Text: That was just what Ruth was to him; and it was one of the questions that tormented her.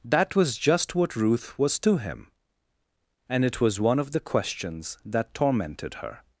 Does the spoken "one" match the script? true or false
true